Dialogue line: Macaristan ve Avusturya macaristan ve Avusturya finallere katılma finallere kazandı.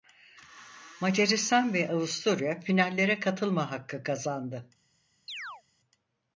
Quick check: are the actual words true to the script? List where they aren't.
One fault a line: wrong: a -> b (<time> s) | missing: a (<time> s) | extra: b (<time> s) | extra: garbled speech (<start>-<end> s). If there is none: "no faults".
missing: macaristan ve Avusturya (2.6 s)
wrong: finallere -> hakkı (3.7 s)